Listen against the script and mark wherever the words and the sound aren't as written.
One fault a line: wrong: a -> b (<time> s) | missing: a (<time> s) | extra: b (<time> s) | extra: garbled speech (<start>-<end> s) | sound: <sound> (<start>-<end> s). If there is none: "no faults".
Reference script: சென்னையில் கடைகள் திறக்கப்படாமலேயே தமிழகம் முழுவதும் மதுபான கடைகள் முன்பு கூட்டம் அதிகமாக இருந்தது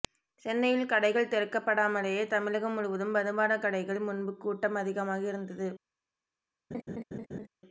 sound: laugh (6.7-7.5 s)